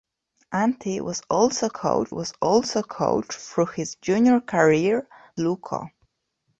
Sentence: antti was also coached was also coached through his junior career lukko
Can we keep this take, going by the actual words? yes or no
yes